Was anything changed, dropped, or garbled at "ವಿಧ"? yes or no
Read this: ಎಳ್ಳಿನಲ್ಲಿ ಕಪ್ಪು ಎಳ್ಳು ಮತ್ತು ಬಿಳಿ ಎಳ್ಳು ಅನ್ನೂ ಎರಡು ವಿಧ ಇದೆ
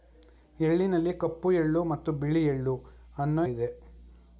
yes